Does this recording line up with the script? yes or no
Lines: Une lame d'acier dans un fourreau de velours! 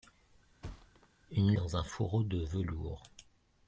no